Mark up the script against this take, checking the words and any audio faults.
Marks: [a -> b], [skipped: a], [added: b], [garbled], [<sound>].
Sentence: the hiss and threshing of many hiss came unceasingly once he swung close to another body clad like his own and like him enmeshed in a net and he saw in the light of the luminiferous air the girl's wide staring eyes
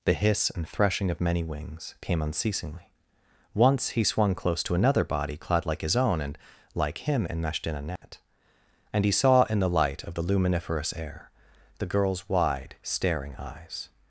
the hiss and threshing of many [hiss -> wings] came unceasingly once he swung close to another body clad like his own and like him enmeshed in a net [dropout] and he saw in the light of the luminiferous air the girl's wide staring eyes